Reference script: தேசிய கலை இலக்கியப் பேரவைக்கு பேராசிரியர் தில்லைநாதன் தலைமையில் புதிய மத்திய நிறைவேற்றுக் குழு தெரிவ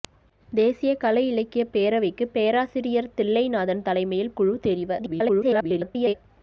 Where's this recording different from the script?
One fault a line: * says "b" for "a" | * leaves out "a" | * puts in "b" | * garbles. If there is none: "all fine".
* leaves out "புதிய மத்திய நிறைவேற்றுக்"
* garbles